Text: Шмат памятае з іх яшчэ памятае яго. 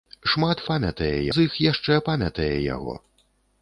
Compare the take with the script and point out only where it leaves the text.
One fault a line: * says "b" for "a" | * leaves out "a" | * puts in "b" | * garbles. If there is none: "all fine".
all fine